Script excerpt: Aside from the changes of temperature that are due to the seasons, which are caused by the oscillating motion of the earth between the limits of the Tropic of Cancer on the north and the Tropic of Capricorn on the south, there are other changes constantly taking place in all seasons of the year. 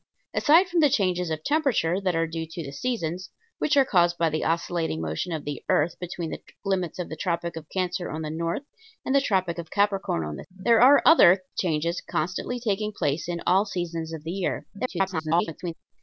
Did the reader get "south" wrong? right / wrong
wrong